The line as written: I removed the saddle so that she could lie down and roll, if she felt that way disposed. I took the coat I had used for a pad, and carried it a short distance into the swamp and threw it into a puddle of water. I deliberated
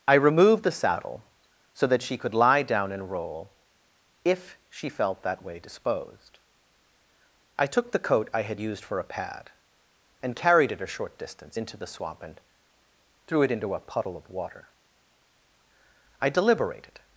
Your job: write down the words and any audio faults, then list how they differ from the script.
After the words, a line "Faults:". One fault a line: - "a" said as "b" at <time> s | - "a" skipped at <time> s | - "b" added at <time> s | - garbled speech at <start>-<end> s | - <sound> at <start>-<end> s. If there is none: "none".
I removed the saddle so that she could lie down and roll, if she felt that way disposed. I took the coat I had used for a pad, and carried it a short distance into the swamp and threw it into a puddle of water. I deliberated
Faults:
none